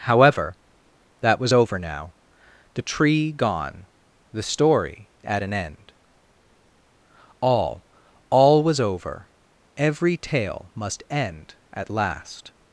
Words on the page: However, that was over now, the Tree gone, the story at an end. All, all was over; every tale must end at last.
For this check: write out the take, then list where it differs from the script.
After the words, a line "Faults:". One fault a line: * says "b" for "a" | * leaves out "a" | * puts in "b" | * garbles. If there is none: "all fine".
However, that was over now, the Tree gone, the story at an end. All, all was over; every tale must end at last.
Faults:
all fine